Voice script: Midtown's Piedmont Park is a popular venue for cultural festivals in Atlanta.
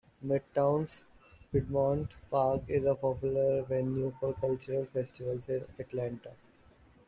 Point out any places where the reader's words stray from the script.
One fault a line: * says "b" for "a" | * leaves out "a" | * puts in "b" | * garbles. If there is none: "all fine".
all fine